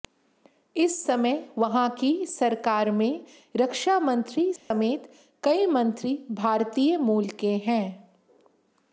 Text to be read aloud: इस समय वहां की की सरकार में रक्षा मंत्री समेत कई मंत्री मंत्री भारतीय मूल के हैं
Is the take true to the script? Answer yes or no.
no